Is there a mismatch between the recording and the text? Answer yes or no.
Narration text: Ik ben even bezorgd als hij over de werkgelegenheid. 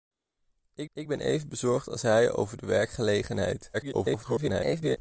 yes